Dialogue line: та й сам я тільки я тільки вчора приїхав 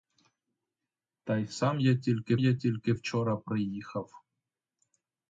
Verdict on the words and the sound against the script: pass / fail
pass